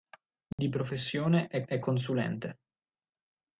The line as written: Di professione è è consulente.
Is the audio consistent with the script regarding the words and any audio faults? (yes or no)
no